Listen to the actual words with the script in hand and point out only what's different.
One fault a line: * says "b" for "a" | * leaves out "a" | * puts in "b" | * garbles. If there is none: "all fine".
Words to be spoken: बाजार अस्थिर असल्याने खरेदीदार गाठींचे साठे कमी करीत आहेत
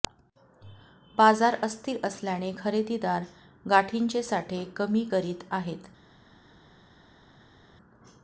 all fine